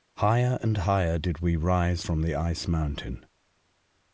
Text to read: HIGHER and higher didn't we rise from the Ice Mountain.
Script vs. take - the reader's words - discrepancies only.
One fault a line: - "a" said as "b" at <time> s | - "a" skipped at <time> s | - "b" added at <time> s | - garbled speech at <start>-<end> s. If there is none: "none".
- "didn't" said as "did" at 1.2 s